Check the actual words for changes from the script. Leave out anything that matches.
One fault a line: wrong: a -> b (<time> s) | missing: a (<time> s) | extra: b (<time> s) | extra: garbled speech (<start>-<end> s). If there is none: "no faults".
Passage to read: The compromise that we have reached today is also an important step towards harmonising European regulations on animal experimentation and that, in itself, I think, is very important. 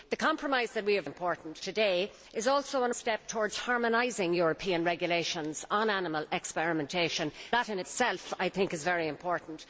wrong: reached -> important (1.0 s)
missing: important (2.9 s)
missing: and (7.3 s)